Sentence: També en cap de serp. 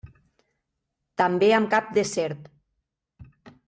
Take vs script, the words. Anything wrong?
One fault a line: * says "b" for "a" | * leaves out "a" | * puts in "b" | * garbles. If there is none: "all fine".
* says "amb" for "en"